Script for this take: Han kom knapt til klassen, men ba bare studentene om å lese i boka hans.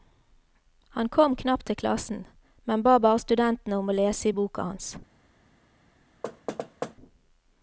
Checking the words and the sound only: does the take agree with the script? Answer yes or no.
no